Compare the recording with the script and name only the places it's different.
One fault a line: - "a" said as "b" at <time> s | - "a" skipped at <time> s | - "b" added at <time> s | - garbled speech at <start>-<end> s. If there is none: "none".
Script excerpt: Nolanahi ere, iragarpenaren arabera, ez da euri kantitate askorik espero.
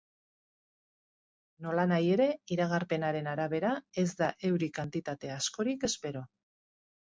none